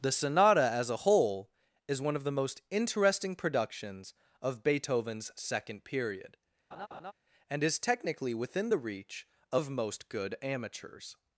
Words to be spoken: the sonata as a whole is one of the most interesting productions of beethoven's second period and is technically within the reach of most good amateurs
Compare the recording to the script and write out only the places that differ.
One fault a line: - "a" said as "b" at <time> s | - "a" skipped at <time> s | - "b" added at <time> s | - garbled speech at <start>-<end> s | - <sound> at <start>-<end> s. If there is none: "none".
- laugh at 6.7-7.1 s